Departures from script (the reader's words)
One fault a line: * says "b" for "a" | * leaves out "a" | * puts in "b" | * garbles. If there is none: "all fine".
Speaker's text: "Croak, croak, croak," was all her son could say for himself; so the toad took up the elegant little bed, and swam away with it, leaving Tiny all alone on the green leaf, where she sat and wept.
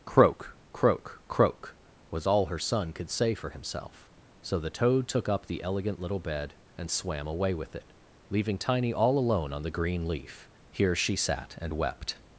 * says "here" for "where"